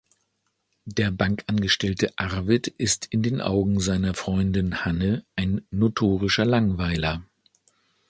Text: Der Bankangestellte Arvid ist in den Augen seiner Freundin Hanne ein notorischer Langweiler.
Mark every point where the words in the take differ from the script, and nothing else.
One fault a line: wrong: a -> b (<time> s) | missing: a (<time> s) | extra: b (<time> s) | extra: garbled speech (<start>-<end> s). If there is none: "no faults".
no faults